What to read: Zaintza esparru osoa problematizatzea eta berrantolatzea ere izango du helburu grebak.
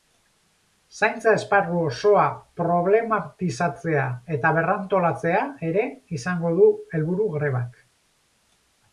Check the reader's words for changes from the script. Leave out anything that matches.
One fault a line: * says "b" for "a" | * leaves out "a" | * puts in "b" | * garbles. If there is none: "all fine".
all fine